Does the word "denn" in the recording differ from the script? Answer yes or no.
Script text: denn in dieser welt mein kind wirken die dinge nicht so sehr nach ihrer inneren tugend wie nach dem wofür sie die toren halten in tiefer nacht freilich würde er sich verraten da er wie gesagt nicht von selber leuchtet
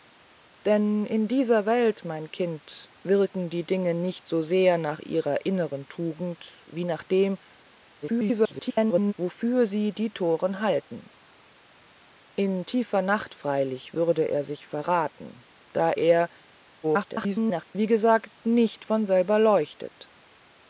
no